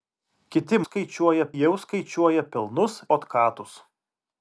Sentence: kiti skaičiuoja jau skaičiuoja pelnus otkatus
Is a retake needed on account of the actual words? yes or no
no